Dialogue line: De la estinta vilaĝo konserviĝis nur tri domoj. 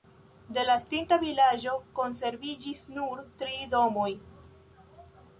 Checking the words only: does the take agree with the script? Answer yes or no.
yes